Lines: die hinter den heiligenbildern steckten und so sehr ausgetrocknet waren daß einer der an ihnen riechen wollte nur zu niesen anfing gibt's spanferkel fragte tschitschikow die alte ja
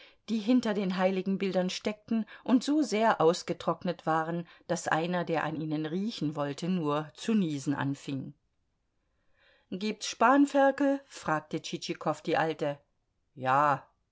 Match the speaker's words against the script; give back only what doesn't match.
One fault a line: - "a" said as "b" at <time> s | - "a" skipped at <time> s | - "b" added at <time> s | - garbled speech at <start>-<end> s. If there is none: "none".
none